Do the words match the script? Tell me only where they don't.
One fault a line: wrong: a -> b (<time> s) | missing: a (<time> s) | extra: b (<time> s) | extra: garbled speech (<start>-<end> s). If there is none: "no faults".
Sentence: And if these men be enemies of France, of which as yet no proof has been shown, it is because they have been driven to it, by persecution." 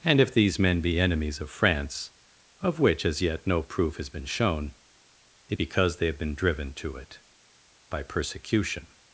missing: is (5.6 s)